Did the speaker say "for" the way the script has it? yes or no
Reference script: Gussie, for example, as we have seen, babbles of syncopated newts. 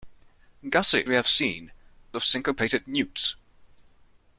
no